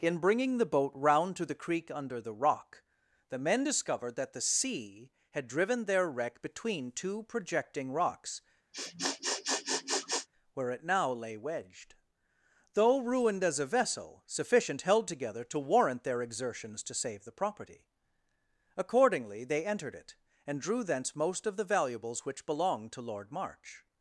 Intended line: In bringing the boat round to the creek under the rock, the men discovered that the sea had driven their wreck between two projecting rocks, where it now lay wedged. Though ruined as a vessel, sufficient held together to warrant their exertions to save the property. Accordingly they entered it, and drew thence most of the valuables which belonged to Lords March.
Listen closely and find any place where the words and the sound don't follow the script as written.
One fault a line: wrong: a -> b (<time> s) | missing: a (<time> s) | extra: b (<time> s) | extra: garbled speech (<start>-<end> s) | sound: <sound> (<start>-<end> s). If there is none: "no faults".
sound: sniff (8.7-10.3 s)
wrong: Lords -> Lord (23.0 s)